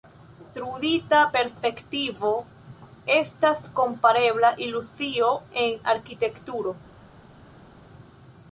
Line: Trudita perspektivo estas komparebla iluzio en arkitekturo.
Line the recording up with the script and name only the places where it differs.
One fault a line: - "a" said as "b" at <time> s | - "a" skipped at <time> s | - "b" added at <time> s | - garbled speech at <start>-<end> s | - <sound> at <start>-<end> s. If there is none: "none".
none